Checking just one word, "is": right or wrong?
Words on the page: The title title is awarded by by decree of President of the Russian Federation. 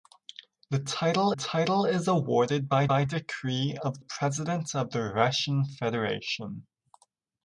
right